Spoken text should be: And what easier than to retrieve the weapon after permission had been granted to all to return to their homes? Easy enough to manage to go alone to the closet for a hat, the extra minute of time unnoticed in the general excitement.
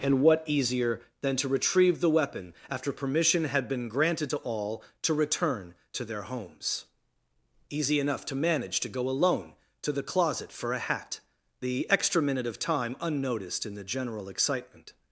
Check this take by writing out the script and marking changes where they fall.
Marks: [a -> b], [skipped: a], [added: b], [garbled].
And what easier than to retrieve the weapon after permission had been granted to all to return to their homes? Easy enough to manage to go alone to the closet for a hat, the extra minute of time unnoticed in the general excitement.